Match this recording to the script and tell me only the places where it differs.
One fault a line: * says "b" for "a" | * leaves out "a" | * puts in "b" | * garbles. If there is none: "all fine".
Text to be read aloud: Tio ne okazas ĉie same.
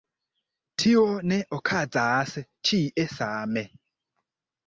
all fine